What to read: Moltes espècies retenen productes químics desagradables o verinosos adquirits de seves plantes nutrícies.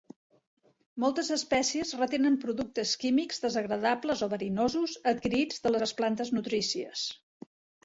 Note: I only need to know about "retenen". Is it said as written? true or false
true